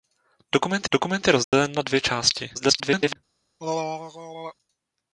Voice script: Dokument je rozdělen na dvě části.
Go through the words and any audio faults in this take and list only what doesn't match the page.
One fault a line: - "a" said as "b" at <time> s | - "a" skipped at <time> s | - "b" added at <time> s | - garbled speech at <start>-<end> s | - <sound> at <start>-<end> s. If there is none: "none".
- "dokument" added at 0.9 s
- dropout at 1.4-1.5 s
- garbled speech at 2.5-3.2 s
- throat clearing at 3.6-4.5 s